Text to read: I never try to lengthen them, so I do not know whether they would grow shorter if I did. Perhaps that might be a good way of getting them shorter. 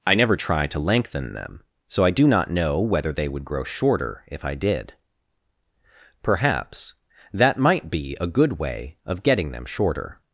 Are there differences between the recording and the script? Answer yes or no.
no